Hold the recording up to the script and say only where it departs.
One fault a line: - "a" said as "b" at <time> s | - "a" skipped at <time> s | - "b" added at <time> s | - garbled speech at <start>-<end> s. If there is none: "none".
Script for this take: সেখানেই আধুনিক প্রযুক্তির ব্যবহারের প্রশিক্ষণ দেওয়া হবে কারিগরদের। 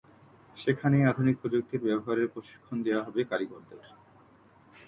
none